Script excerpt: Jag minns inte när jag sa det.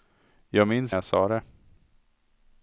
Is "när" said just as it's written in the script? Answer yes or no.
no